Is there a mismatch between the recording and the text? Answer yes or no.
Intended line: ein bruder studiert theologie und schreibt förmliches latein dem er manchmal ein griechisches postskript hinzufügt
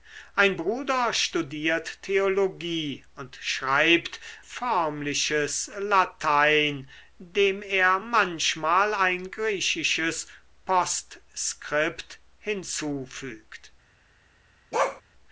no